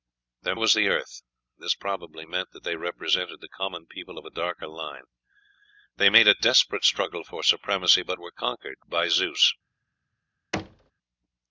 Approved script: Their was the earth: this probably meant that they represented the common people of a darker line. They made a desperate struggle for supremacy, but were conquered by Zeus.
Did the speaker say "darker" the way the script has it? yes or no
yes